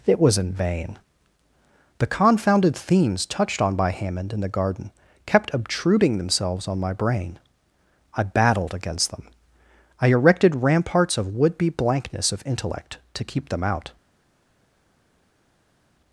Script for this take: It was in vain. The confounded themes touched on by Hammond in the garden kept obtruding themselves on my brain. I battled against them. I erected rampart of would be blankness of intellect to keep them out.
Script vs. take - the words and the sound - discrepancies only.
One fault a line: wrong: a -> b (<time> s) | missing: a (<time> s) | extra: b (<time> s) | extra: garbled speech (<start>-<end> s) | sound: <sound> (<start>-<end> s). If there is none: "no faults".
wrong: rampart -> ramparts (10.6 s)